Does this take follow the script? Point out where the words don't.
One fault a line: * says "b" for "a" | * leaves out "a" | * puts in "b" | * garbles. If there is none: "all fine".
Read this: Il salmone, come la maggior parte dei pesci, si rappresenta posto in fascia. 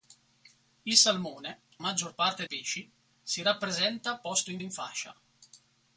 * leaves out "come la"
* leaves out "dei"
* puts in "in"